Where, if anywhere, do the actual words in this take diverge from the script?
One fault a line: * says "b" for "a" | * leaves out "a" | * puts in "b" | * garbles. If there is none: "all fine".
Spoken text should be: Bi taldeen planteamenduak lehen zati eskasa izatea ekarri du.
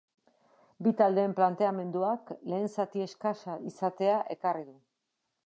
all fine